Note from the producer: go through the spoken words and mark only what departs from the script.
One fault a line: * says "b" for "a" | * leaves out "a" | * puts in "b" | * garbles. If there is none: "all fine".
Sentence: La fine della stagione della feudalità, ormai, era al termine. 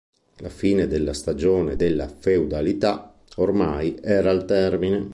all fine